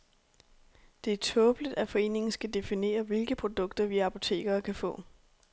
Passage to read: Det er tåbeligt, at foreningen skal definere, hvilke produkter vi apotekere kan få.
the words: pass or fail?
pass